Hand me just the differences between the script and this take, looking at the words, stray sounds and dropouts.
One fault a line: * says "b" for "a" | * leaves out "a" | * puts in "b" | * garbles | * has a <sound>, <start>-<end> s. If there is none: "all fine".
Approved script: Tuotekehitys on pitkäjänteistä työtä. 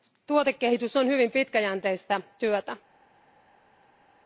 * puts in "hyvin"